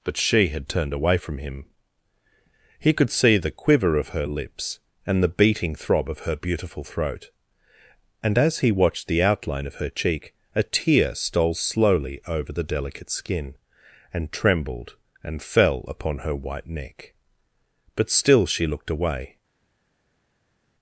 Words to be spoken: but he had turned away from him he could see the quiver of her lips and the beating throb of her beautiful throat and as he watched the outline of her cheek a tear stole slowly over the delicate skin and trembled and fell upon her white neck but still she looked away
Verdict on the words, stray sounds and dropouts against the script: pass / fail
fail